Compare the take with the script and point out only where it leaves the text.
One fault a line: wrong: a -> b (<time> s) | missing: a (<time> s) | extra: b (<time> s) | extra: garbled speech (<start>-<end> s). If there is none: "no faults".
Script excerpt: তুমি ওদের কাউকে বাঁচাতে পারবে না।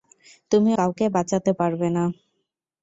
missing: ওদের (0.7 s)